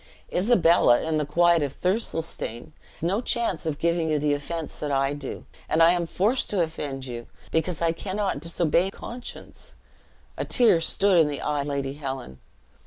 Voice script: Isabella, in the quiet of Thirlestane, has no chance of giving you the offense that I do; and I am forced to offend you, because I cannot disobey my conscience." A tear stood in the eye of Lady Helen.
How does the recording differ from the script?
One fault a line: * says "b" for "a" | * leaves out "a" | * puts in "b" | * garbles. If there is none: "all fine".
* leaves out "has"
* leaves out "my"
* leaves out "of"